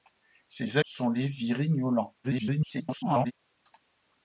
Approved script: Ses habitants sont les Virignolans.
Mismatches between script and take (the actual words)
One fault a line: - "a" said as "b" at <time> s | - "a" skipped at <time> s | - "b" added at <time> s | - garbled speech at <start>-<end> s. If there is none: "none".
- "habitants" skipped at 0.8 s
- garbled speech at 2.2-3.3 s